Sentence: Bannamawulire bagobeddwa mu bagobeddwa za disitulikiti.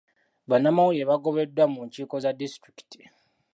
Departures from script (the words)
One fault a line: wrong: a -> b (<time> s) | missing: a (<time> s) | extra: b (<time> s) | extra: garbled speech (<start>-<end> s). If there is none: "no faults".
wrong: bagobeddwa -> nkiiko (1.9 s)